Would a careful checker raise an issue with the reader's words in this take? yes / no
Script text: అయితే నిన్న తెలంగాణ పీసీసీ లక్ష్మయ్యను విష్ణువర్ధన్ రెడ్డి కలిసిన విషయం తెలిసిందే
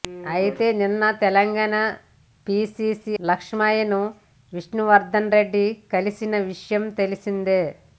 no